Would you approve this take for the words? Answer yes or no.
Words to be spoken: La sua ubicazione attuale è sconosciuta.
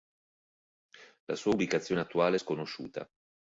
yes